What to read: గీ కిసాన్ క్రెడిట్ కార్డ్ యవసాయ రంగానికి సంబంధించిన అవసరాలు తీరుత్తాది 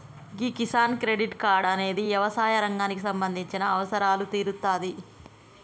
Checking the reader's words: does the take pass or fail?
fail